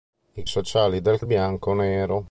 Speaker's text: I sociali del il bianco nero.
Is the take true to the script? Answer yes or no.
yes